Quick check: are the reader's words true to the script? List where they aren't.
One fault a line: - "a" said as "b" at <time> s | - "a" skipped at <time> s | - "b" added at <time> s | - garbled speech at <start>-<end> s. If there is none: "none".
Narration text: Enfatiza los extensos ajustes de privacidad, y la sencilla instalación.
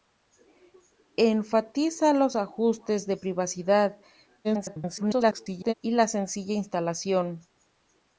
- "extensos" skipped at 2.4 s
- garbled speech at 4.4-5.7 s